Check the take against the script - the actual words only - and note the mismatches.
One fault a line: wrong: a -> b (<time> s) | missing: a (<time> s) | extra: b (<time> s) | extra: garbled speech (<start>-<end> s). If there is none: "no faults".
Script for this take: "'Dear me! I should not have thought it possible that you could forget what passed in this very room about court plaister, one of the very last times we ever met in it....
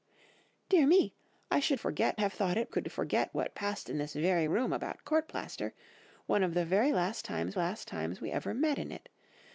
wrong: not -> forget (1.8 s)
missing: possible that you (2.7 s)
extra: last times (7.5 s)